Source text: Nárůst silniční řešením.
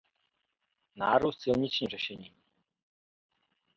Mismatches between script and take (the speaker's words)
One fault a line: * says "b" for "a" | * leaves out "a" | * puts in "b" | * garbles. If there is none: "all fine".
all fine